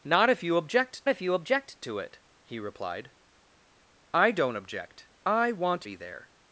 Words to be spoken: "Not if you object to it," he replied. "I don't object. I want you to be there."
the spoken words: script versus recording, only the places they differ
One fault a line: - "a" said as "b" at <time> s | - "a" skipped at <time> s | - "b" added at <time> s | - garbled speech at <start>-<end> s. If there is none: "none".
- "if you object" added at 1.1 s
- "you to" skipped at 5.9 s